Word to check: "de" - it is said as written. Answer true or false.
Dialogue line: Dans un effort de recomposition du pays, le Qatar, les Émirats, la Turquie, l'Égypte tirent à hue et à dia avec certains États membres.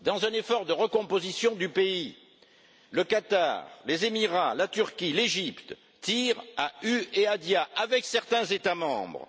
true